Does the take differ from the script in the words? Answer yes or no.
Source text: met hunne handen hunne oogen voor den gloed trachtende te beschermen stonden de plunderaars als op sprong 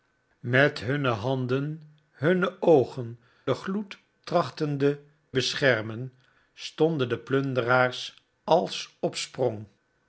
yes